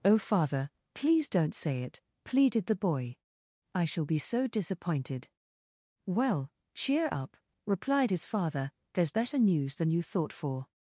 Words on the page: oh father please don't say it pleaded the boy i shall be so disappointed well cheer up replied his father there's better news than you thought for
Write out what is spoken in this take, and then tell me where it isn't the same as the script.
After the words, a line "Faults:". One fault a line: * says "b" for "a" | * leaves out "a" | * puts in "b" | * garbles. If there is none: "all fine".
oh father please don't say it pleaded the boy i shall be so disappointed well cheer up replied his father there's better news than you thought for
Faults:
all fine